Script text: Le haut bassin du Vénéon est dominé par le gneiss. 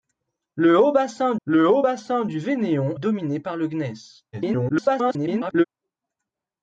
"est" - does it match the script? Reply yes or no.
no